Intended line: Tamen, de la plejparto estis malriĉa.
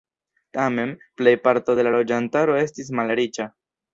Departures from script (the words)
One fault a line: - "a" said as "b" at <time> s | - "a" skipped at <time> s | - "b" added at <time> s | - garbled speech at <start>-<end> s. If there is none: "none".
- "plejparto" added at 1.2 s
- "plejparto" said as "loĝantaro" at 1.9 s